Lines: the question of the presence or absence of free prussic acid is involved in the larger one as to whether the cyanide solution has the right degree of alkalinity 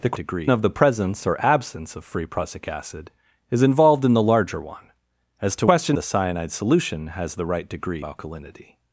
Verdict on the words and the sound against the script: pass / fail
fail